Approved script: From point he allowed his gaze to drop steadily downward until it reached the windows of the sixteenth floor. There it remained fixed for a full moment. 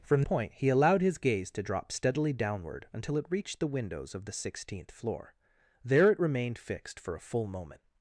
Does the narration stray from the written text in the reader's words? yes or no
no